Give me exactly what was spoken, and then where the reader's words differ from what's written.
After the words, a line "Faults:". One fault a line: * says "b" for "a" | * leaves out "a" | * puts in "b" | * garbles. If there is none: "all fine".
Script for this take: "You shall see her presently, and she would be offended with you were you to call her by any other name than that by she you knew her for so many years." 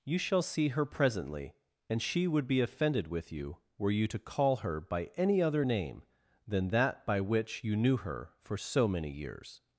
"You shall see her presently, and she would be offended with you were you to call her by any other name than that by which you knew her for so many years."
Faults:
* says "which" for "she"